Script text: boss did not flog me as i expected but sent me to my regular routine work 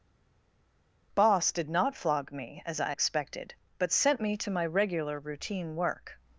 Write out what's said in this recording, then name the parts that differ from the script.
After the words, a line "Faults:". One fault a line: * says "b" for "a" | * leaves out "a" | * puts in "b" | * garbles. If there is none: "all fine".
boss did not flog me as i expected but sent me to my regular routine work
Faults:
all fine